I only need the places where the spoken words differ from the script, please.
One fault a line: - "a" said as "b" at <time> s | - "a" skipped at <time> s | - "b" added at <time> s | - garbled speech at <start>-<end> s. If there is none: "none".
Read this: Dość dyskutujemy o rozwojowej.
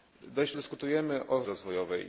none